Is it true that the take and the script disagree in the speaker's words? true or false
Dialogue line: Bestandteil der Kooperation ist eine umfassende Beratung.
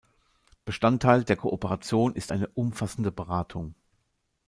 false